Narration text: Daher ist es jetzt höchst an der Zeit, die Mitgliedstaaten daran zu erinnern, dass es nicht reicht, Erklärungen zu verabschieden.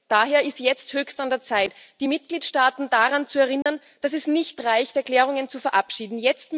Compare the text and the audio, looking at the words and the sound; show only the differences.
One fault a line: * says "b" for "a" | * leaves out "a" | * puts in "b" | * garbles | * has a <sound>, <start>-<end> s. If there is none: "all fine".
* leaves out "es"
* has a dropout, 3.6-3.7 s